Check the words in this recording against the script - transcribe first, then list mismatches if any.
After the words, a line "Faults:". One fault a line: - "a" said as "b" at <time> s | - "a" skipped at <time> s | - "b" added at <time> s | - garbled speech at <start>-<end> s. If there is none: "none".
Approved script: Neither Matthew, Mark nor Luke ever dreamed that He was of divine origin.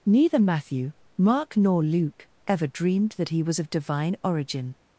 Neither Matthew, Mark nor Luke ever dreamed that He was of divine origin.
Faults:
none